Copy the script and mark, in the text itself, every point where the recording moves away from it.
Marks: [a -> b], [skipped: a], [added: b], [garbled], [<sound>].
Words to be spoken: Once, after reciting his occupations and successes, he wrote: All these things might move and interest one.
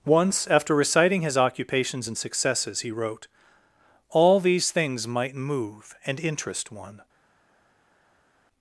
Once, after reciting his occupations and successes, he wrote: All these things might move and interest one.